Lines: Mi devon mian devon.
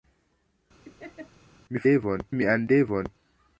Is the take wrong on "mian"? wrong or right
right